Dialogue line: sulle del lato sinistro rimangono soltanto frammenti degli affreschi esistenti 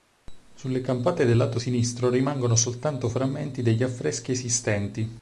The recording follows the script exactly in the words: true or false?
false